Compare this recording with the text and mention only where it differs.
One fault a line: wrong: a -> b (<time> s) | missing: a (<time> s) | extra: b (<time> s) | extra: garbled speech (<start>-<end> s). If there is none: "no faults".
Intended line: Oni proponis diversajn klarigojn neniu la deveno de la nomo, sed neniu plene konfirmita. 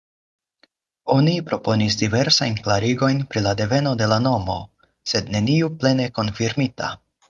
wrong: neniu -> pri (3.3 s)